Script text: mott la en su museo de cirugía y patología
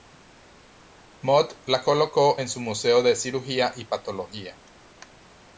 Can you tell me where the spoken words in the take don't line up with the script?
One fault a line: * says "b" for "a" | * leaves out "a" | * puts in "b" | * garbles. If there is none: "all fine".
* puts in "colocó"